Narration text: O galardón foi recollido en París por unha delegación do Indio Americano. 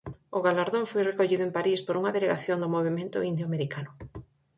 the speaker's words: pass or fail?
fail